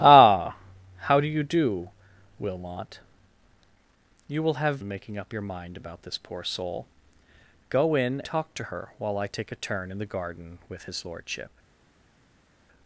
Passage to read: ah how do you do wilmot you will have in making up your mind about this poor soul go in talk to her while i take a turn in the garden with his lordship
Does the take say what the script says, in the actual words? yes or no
yes